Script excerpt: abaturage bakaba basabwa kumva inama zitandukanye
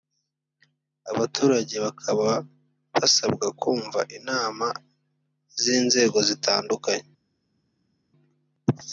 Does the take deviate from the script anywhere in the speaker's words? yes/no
yes